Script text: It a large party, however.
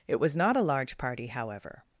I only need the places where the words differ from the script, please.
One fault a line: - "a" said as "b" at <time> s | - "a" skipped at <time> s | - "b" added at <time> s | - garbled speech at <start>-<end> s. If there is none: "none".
- "was not" added at 0.2 s